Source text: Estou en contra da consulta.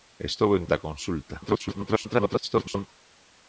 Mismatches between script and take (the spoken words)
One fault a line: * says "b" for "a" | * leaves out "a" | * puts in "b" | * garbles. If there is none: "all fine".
* leaves out "contra"
* garbles